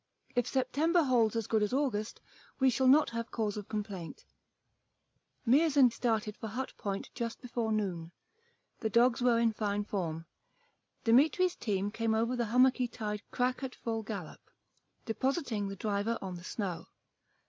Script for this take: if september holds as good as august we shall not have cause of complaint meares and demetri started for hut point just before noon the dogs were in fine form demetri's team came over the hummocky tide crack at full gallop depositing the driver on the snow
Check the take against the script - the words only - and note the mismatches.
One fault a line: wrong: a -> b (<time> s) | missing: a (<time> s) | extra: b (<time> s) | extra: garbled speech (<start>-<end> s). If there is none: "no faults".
missing: demetri (5.9 s)